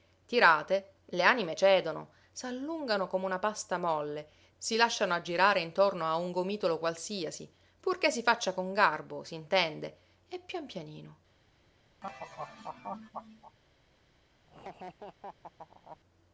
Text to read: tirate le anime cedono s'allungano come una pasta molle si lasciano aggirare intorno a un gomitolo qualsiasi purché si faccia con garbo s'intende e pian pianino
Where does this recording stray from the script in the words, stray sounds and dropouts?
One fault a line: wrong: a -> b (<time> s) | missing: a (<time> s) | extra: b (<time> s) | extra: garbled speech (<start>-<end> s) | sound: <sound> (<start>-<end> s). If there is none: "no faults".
sound: laugh (12.0-13.6 s)
sound: laugh (14.5-16.0 s)